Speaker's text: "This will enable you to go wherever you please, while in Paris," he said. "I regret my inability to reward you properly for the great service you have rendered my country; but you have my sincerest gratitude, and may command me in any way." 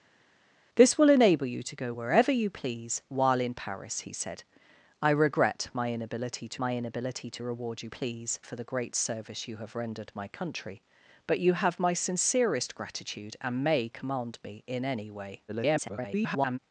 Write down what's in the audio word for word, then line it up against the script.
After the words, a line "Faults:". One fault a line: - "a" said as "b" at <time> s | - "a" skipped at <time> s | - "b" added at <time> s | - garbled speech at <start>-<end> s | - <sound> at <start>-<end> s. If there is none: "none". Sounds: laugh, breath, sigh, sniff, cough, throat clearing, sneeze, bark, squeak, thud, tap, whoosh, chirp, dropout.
"This will enable you to go wherever you please, while in Paris," he said. "I regret my inability to my inability to reward you please for the great service you have rendered my country; but you have my sincerest gratitude, and may command me in any way." [garbled]
Faults:
- "my inability to" added at 6.6 s
- "properly" said as "please" at 7.9 s
- garbled speech at 15.5-16.6 s